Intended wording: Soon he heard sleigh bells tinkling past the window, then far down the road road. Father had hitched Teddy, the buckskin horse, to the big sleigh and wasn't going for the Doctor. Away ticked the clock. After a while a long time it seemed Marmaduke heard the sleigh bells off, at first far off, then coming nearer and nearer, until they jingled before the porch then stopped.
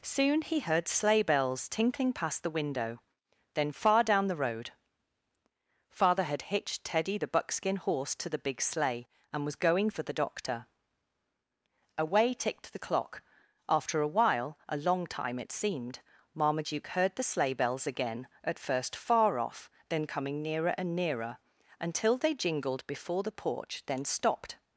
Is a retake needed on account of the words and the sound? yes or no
yes